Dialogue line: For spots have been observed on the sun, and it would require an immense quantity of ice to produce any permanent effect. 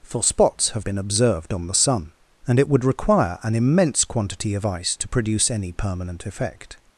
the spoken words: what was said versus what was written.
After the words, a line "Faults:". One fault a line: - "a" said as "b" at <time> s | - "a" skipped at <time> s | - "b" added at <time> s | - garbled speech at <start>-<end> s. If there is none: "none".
For spots have been observed on the sun, and it would require an immense quantity of ice to produce any permanent effect.
Faults:
none